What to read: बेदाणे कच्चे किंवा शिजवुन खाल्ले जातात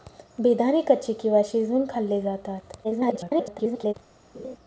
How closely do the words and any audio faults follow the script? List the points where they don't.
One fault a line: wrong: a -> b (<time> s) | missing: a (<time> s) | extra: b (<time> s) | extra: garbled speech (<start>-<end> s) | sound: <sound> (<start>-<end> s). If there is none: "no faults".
extra: garbled speech (2.8-3.9 s)
sound: laugh (4.3-4.6 s)